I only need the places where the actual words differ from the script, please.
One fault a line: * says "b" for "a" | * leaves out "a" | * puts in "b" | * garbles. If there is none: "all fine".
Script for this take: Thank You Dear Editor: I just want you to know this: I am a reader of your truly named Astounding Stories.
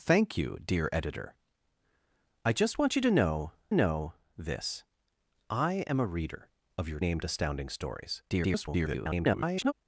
* puts in "know"
* leaves out "truly"
* garbles